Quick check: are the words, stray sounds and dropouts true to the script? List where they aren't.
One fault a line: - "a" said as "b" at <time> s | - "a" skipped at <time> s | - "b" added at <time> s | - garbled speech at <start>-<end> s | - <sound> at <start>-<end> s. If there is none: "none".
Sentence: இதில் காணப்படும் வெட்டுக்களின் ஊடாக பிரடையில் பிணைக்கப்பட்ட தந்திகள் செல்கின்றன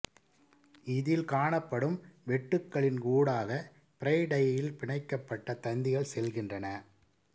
none